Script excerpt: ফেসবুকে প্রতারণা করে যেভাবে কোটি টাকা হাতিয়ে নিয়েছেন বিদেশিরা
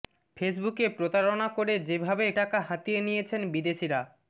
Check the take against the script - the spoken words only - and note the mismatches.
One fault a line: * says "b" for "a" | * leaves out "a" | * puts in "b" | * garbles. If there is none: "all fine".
* leaves out "কোটি"